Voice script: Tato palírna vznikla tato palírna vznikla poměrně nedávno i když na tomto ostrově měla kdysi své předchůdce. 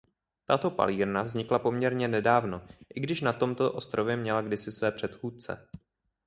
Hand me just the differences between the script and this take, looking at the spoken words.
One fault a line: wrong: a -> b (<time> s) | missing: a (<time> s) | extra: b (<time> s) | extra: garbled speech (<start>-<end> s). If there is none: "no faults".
missing: tato palírna vznikla (1.6 s)